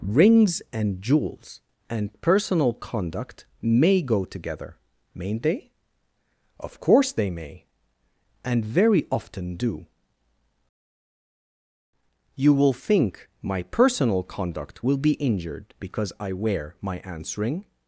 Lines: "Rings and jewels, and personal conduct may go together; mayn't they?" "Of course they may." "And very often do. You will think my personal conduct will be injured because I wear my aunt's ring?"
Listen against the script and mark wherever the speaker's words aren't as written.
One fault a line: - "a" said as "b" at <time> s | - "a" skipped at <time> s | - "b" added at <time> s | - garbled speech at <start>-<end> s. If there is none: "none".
none